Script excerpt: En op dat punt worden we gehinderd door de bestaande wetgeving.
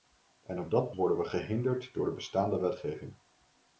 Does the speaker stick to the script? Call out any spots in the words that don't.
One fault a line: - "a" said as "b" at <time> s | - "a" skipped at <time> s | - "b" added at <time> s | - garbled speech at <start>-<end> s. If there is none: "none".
- "punt" skipped at 0.9 s